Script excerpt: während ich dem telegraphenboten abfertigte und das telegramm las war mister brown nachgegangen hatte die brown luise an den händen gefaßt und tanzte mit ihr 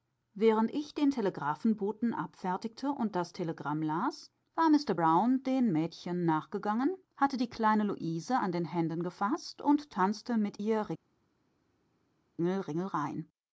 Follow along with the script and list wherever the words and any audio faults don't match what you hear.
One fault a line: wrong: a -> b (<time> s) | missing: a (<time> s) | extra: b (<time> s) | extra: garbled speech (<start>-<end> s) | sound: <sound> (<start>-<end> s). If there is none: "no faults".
wrong: dem -> den (0.9 s)
extra: den mädchen (5.4 s)
wrong: brown -> kleine (7.5 s)